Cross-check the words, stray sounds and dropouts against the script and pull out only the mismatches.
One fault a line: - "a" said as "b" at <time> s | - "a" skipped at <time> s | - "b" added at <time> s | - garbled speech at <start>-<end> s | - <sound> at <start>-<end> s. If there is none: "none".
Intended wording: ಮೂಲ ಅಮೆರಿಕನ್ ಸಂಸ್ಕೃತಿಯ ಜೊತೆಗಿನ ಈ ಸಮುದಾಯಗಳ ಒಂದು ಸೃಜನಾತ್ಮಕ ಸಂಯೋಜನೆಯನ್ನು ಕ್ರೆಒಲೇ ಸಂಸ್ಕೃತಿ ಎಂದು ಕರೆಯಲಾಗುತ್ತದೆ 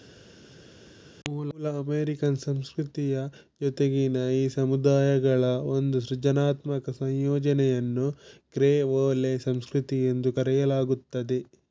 none